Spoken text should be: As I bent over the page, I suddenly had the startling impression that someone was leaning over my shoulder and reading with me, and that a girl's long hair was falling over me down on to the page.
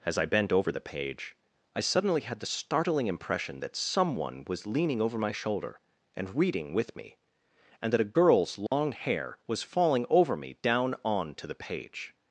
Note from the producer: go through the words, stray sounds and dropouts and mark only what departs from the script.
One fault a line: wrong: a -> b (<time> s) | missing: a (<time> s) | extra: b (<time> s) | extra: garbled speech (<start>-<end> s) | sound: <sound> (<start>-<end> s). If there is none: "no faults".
sound: dropout (8.7-8.7 s)